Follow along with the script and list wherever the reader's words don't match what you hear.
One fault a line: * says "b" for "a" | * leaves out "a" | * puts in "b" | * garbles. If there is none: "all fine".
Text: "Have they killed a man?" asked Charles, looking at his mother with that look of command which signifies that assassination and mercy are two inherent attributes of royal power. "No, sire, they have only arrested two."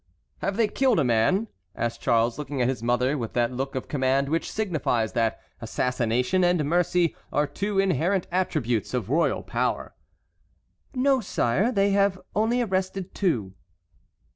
all fine